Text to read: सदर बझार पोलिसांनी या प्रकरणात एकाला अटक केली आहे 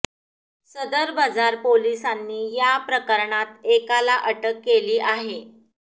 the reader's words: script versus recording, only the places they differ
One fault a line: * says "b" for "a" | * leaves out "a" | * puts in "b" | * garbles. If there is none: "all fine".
all fine